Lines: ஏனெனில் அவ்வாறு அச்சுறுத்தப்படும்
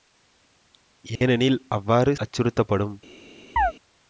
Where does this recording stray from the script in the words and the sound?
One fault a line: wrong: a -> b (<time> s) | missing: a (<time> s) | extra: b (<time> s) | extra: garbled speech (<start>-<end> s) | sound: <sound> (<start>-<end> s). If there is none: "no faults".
sound: dropout (1.2-1.2 s)
sound: chirp (3.6-3.7 s)